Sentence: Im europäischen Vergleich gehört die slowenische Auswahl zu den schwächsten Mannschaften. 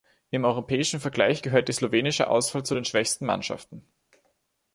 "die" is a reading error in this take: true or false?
false